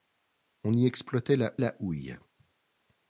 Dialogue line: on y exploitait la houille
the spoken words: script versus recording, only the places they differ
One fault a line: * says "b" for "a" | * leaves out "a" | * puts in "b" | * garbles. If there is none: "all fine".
* puts in "la"